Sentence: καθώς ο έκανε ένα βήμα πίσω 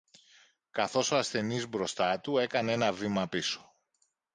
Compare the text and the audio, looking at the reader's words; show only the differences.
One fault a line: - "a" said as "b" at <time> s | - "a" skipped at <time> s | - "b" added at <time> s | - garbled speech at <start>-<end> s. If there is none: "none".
- "ασθενής μπροστά του" added at 1.2 s